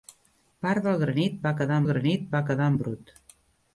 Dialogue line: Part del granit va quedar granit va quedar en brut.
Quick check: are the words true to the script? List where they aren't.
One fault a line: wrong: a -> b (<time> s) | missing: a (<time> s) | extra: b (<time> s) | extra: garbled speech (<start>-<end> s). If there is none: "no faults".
no faults